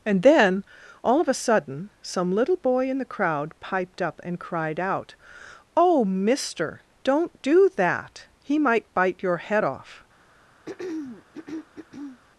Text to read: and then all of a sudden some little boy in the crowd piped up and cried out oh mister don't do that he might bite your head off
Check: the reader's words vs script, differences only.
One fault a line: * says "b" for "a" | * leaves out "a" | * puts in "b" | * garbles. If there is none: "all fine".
all fine